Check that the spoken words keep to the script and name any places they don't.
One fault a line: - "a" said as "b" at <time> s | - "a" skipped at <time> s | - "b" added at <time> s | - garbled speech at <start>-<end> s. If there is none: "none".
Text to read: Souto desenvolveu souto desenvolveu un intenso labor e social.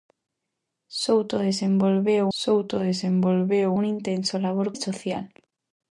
none